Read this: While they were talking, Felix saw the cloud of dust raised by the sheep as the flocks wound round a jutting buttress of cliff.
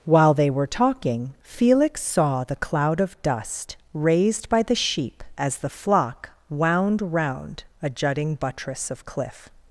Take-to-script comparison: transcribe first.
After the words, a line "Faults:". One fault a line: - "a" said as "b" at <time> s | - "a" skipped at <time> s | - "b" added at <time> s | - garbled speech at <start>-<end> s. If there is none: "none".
While they were talking, Felix saw the cloud of dust raised by the sheep as the flock wound round a jutting buttress of cliff.
Faults:
- "flocks" said as "flock" at 5.7 s